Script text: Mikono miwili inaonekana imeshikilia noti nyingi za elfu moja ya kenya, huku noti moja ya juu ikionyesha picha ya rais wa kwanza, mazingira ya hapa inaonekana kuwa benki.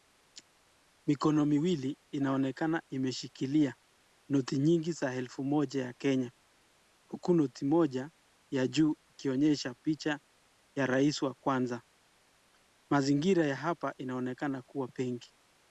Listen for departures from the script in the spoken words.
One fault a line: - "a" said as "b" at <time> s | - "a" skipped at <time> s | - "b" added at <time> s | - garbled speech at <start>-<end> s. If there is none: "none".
none